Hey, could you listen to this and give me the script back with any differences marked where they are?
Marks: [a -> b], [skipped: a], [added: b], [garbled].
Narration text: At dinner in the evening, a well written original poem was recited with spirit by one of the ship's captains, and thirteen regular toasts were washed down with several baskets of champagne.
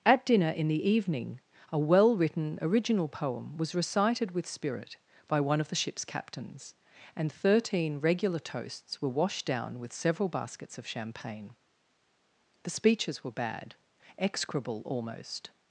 At dinner in the evening, a well written original poem was recited with spirit by one of the ship's captains, and thirteen regular toasts were washed down with several baskets of champagne. [added: The speeches were bad execrable almost]